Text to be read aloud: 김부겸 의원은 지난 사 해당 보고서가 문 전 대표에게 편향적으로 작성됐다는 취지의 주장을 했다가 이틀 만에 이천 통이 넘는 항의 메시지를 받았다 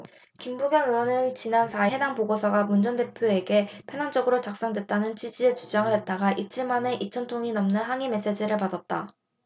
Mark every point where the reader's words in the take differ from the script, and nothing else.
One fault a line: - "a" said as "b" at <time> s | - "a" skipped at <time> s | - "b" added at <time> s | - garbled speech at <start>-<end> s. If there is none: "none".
none